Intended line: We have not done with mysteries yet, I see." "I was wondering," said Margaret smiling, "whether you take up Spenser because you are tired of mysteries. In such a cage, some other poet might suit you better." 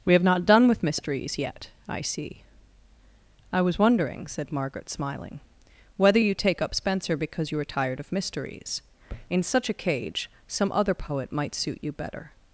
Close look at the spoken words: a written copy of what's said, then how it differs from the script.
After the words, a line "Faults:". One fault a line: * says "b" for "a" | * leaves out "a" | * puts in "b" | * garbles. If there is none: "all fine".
We have not done with mysteries yet, I see." "I was wondering," said Margaret smiling, "whether you take up Spenser because you are tired of mysteries. In such a cage, some other poet might suit you better."
Faults:
all fine